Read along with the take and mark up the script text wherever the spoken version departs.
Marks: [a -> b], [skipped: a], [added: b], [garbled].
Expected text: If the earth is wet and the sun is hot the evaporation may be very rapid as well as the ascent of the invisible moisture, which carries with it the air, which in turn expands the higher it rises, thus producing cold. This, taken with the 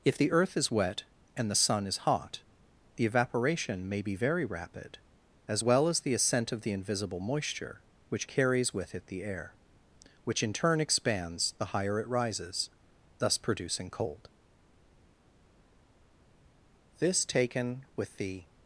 If the earth is wet and the sun is hot the evaporation may be very rapid as well as the ascent of the invisible moisture, which carries with it the air, which in turn expands the higher it rises, thus producing cold. This, taken with the